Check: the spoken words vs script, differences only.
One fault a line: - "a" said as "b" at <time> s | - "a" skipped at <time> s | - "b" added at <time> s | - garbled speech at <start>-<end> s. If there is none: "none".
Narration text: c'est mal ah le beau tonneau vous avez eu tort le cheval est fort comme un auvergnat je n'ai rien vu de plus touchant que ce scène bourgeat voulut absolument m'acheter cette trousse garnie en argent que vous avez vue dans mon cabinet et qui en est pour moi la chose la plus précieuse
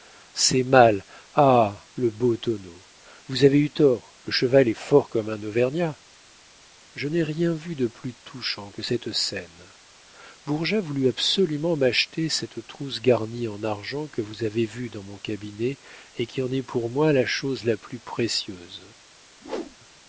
- "ce" said as "cette" at 8.8 s